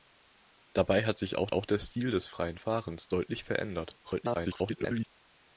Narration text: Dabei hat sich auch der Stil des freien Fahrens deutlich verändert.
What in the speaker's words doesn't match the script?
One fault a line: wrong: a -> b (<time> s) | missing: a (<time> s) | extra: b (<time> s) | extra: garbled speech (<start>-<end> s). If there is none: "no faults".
extra: auch (1.5 s)
extra: garbled speech (4.0-5.1 s)